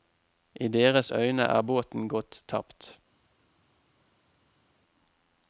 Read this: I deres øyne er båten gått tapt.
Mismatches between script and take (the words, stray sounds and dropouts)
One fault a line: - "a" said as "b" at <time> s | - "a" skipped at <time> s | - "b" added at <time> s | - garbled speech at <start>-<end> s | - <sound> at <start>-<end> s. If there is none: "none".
none